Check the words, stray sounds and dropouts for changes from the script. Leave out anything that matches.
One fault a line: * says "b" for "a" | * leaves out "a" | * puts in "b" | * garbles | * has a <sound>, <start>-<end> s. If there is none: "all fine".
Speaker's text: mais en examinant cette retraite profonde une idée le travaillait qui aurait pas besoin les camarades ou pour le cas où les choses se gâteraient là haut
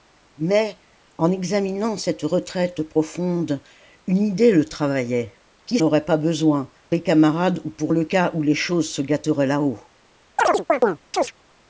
* has a chirp, 10.4-11.3 s